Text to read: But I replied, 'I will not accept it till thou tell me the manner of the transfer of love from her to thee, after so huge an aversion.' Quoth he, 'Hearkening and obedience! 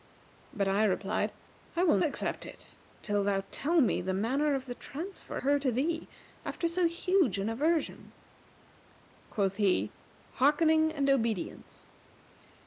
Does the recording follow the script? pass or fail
fail